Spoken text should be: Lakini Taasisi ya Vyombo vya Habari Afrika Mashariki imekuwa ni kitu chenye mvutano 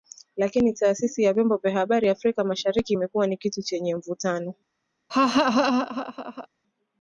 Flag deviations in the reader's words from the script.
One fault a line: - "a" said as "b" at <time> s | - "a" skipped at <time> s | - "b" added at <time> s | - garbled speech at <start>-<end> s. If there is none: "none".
none